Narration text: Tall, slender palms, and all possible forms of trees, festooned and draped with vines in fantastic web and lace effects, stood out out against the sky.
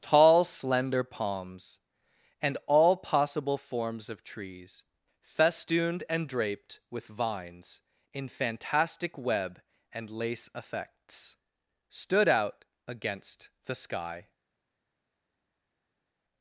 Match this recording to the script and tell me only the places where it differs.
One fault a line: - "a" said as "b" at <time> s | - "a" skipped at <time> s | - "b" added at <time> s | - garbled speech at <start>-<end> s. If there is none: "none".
- "out" skipped at 12.7 s